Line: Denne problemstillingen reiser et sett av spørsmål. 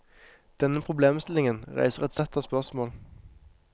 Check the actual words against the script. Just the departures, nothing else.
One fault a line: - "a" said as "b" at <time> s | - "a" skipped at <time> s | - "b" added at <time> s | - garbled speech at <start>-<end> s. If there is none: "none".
none